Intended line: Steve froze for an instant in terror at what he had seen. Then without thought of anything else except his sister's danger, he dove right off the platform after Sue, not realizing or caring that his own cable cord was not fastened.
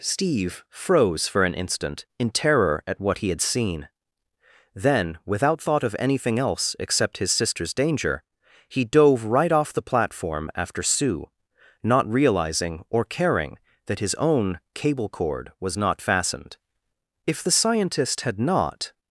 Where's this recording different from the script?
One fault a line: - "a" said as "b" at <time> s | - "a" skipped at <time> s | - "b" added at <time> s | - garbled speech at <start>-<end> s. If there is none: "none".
- "If the scientist had not" added at 17.3 s